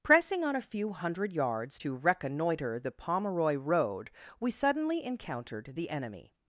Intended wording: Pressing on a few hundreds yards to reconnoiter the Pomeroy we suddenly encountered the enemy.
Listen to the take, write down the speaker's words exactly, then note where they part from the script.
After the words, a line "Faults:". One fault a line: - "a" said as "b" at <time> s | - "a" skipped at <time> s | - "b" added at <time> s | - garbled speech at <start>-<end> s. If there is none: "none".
Pressing on a few hundred yards to reconnoiter the Pomeroy road, we suddenly encountered the enemy.
Faults:
- "hundreds" said as "hundred" at 0.9 s
- "road" added at 3.5 s